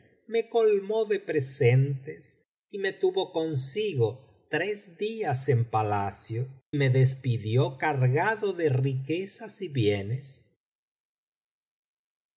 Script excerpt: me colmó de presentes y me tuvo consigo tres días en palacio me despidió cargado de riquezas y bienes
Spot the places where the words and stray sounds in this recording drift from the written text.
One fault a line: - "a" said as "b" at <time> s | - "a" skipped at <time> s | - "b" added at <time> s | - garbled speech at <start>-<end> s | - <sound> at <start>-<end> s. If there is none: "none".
none